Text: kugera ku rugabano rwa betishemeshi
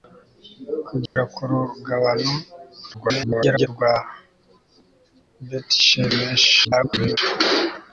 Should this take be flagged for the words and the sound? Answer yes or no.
yes